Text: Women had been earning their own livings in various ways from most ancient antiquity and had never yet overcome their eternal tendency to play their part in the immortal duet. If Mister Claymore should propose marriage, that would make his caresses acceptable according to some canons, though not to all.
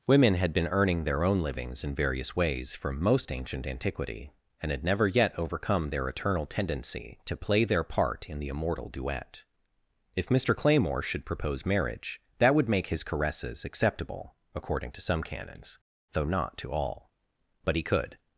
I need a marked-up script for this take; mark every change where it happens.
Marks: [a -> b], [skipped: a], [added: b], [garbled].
Women had been earning their own livings in various ways from most ancient antiquity and had never yet overcome their eternal tendency to play their part in the immortal duet. If Mister Claymore should propose marriage, that would make his caresses acceptable according to some canons, though not to all. [added: But he could]